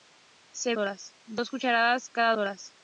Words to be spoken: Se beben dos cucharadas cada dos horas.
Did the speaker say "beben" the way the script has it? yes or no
no